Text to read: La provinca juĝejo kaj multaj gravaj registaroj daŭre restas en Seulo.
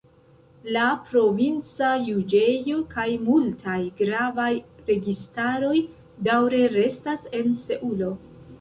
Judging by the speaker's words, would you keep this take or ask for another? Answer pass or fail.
pass